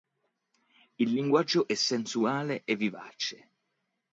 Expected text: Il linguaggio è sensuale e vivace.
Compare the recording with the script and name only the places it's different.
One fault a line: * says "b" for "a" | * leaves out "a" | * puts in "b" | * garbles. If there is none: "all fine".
all fine